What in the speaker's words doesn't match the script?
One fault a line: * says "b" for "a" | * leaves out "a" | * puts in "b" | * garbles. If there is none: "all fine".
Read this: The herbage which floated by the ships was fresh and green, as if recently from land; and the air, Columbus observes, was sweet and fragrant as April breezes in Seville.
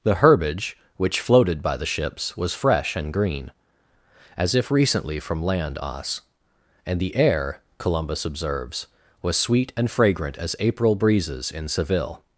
* puts in "os"